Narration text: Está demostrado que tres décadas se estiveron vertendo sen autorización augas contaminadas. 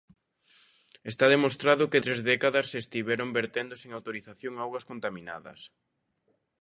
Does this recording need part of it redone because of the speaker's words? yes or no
no